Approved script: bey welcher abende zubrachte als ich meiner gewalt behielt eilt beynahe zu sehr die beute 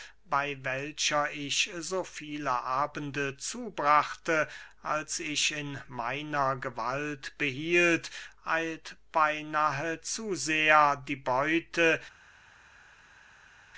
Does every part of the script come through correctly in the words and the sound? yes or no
no